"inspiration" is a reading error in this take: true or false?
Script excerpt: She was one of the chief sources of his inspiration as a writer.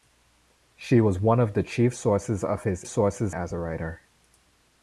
true